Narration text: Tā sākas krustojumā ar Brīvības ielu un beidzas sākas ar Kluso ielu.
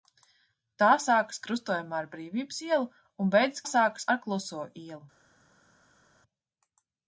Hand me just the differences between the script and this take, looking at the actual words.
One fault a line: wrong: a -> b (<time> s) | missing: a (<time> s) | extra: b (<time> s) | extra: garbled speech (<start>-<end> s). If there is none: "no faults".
no faults